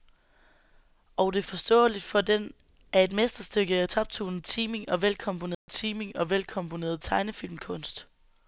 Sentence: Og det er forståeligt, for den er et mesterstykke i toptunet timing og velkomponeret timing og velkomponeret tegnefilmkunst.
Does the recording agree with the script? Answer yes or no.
yes